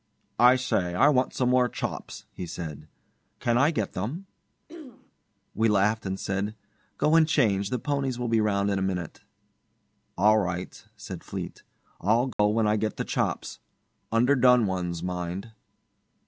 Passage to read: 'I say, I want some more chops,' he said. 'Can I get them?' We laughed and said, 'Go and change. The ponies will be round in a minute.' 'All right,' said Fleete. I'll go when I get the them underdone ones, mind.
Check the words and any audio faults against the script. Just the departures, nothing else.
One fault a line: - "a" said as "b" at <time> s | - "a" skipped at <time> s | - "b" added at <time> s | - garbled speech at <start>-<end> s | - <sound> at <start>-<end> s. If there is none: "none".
- throat clearing at 4.7-5.1 s
- dropout at 12.3-12.4 s
- "them" said as "chops" at 13.0 s